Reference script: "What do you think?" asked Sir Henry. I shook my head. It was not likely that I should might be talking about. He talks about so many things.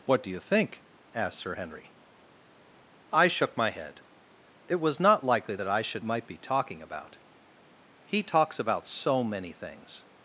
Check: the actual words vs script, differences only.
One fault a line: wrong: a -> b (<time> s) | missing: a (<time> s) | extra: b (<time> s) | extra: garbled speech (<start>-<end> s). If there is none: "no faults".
no faults